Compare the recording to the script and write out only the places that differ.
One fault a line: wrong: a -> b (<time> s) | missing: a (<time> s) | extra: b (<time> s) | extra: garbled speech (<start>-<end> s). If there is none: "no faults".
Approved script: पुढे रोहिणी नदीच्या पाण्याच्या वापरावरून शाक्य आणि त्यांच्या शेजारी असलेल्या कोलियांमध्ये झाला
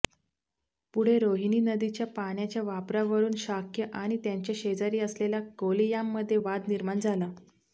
extra: वाद निर्माण (6.4 s)